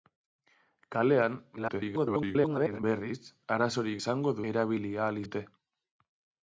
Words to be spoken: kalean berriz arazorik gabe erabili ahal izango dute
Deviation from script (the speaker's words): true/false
true